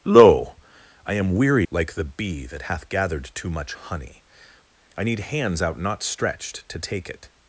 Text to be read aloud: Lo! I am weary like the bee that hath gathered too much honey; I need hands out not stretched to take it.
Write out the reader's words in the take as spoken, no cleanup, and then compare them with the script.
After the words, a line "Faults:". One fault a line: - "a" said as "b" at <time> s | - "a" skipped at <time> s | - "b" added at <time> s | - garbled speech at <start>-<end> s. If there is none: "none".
Lo! I am weary like the bee that hath gathered too much honey; I need hands out not stretched to take it.
Faults:
none